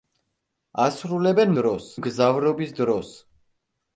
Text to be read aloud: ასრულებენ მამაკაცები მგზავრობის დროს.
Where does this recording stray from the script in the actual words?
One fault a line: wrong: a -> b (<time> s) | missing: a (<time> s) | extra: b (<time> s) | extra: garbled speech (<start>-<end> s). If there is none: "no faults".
wrong: მამაკაცები -> დროს (1.6 s)